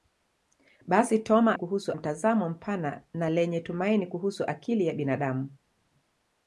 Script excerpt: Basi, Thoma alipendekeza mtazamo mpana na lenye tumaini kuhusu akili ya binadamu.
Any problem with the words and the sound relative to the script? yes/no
yes